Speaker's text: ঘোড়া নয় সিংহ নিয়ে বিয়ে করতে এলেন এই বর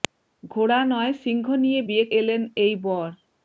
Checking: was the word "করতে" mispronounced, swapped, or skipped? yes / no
yes